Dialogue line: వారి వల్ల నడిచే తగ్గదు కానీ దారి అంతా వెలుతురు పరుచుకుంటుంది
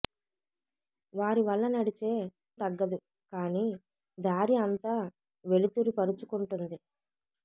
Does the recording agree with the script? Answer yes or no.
yes